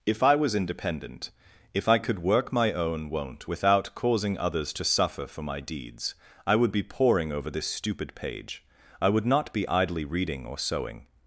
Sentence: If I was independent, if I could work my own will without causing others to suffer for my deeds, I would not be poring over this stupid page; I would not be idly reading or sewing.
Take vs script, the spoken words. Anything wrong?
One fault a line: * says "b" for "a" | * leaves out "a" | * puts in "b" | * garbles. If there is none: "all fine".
* says "won't" for "will"
* leaves out "not"